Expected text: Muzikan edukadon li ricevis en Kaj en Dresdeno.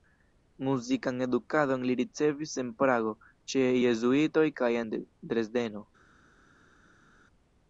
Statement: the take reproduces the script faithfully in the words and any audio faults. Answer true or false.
false